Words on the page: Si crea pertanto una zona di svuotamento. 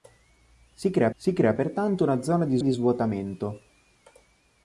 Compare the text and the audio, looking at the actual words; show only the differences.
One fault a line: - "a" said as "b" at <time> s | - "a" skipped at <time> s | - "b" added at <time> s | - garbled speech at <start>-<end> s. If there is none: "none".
- "si crea" added at 1.1 s
- "di" added at 2.6 s